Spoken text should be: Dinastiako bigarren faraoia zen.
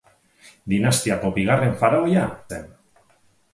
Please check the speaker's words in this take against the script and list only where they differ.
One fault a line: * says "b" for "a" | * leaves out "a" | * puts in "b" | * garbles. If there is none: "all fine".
all fine